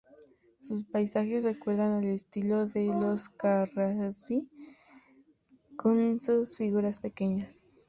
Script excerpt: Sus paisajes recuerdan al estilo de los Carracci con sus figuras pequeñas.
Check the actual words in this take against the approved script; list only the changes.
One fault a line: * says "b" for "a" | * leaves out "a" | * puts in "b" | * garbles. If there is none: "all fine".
all fine